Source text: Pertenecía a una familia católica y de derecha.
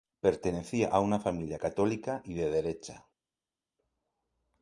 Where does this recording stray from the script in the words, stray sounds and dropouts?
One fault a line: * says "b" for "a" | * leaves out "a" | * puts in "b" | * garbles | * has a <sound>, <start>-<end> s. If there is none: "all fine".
all fine